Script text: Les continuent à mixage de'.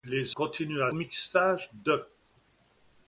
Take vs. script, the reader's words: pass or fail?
pass